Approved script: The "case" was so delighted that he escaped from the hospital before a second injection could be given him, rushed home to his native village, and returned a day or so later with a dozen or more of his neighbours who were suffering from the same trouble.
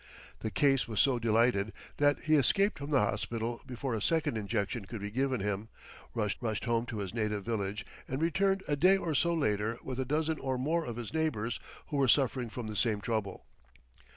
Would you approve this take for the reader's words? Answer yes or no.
no